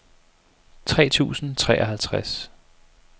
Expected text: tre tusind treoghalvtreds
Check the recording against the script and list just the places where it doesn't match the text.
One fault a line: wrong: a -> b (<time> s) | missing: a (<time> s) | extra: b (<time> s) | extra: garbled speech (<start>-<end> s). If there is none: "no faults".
no faults